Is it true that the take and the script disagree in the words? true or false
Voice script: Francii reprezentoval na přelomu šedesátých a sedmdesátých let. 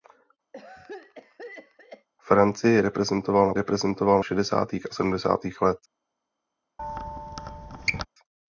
true